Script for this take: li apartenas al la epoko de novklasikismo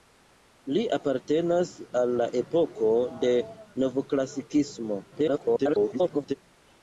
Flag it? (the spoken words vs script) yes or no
yes